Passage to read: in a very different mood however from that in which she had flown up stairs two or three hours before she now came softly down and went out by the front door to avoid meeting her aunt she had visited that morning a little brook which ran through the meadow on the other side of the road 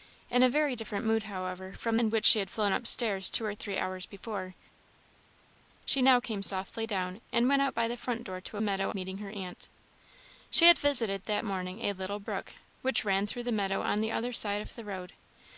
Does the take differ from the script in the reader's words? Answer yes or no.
yes